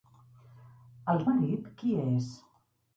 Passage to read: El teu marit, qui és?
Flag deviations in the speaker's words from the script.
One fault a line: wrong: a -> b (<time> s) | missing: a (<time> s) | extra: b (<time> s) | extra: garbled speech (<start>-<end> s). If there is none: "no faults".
missing: teu (1.2 s)